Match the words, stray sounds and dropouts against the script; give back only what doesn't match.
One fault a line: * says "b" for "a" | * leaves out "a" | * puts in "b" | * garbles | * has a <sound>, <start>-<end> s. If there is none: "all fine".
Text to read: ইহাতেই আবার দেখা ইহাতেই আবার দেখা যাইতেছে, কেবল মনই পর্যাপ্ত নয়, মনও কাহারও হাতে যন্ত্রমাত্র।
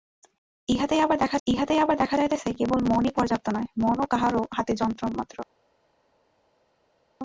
all fine